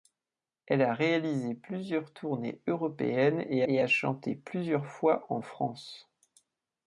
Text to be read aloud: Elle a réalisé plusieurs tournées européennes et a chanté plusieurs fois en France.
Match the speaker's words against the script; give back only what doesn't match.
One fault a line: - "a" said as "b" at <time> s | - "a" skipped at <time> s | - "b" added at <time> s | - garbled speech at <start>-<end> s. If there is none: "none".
- "et" added at 3.7 s